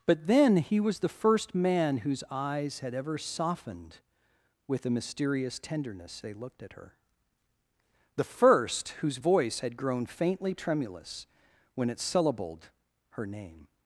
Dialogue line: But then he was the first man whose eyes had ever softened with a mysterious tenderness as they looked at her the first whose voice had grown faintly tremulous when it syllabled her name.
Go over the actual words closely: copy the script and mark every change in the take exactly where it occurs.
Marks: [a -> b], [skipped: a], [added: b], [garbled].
But then he was the first man whose eyes had ever softened with a mysterious tenderness [skipped: as] they looked at her the first whose voice had grown faintly tremulous when it syllabled her name.